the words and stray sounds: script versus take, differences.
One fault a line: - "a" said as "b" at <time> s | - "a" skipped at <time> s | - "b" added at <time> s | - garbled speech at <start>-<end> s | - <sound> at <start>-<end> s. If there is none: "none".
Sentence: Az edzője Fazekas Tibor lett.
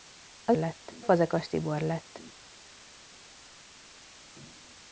- "edzője" said as "lett" at 0.5 s